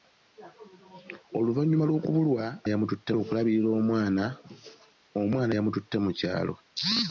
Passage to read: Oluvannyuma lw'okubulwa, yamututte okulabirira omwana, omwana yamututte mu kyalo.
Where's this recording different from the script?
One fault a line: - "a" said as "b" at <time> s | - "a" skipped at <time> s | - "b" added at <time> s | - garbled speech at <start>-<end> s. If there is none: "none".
none